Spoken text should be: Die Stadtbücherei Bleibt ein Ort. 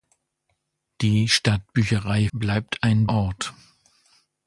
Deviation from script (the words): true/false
false